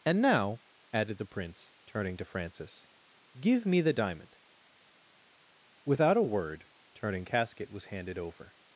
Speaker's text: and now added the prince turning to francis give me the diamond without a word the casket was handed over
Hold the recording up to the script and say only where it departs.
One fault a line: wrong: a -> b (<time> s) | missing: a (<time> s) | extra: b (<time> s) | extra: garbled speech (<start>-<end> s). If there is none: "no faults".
wrong: the -> turning (6.9 s)